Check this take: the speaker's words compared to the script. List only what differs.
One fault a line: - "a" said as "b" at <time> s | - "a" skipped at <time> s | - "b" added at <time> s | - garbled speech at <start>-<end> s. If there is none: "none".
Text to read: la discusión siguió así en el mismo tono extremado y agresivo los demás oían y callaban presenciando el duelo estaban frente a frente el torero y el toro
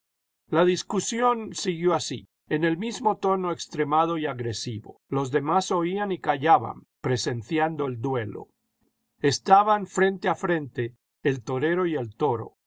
none